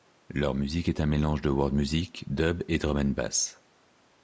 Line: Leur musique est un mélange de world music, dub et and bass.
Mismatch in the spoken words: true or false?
true